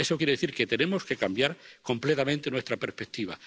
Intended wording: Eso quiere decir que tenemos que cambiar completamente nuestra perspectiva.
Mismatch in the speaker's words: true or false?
false